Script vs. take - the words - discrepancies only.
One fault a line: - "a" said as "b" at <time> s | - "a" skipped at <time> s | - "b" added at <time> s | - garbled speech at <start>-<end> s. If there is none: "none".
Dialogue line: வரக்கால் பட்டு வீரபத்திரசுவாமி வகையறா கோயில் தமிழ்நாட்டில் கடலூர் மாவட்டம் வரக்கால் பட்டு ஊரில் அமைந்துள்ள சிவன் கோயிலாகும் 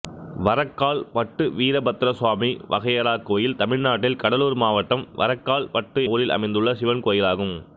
none